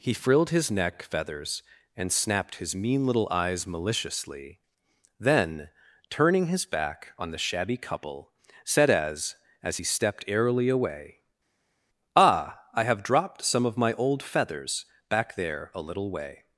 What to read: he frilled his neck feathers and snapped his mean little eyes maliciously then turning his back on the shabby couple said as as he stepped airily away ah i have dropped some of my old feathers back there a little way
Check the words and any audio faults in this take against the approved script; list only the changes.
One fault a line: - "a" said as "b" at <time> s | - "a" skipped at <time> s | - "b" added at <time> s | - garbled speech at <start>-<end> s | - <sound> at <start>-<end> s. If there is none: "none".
none